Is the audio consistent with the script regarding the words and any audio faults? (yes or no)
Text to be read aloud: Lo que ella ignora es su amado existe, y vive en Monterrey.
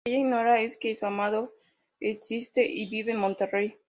no